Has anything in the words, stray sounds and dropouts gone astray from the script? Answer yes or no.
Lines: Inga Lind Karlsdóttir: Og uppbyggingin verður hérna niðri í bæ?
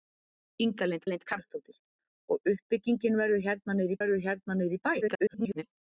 yes